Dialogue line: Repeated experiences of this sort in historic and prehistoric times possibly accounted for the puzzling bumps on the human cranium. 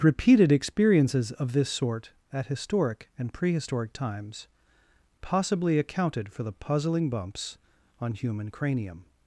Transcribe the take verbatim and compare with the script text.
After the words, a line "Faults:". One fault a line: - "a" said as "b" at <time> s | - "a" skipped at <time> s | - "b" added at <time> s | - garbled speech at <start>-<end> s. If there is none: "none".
Repeated experiences of this sort at historic and prehistoric times possibly accounted for the puzzling bumps on human cranium.
Faults:
- "in" said as "at" at 2.3 s
- "the" skipped at 8.1 s